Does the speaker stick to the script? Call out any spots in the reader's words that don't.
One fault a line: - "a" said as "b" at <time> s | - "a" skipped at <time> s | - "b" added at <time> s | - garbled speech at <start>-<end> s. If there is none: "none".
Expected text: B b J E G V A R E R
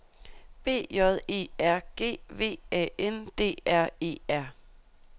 - "b" skipped at 0.9 s
- "R" added at 1.6 s
- "N D" added at 3.0 s